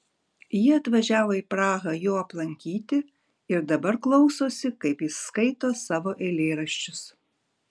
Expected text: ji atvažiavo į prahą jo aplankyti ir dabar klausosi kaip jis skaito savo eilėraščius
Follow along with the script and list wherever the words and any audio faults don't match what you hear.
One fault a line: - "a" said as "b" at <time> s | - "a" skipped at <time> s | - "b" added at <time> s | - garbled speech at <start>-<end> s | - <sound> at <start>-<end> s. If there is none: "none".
none